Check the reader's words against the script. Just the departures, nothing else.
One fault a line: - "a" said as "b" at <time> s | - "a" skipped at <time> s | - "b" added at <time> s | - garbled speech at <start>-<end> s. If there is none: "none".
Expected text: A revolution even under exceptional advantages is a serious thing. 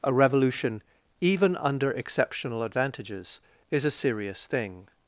none